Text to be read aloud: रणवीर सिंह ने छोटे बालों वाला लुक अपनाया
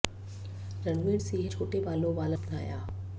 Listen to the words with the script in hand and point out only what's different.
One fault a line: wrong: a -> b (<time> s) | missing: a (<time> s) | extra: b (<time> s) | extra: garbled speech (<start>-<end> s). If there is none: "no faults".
missing: ने (1.5 s)
missing: लुक (2.4 s)